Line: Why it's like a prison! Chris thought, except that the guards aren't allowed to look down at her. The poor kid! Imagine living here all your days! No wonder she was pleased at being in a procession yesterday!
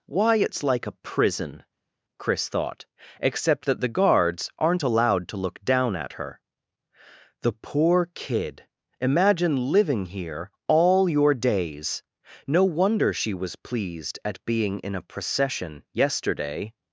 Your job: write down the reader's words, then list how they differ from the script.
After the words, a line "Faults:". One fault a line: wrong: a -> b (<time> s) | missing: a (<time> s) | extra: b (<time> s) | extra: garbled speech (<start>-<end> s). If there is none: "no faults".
Why it's like a prison! Chris thought, except that the guards aren't allowed to look down at her. The poor kid! Imagine living here all your days! No wonder she was pleased at being in a procession yesterday!
Faults:
no faults